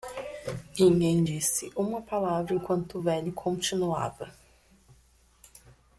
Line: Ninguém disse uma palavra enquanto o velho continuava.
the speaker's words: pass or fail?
pass